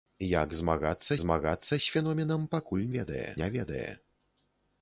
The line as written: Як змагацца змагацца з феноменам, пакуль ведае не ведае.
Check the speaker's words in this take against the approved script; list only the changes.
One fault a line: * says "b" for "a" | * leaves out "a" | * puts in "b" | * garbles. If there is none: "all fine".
all fine